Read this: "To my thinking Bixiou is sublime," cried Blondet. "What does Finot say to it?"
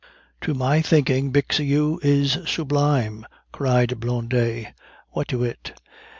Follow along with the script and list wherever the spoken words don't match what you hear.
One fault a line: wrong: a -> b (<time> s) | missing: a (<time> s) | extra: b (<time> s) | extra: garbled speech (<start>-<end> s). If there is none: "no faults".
missing: does Finot say (5.3 s)